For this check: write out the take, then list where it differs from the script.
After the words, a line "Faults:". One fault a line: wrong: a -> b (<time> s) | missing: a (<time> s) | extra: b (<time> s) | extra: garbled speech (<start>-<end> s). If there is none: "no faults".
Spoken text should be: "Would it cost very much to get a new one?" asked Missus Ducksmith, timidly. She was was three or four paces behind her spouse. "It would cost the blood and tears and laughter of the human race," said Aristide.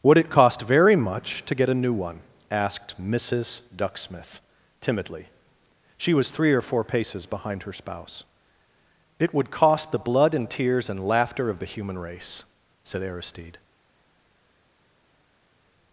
"Would it cost very much to get a new one?" asked Missus Ducksmith, timidly. She was three or four paces behind her spouse. "It would cost the blood and tears and laughter of the human race," said Aristide.
Faults:
missing: was (6.3 s)